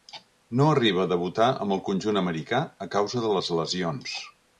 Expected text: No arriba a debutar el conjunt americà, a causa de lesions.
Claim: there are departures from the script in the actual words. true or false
true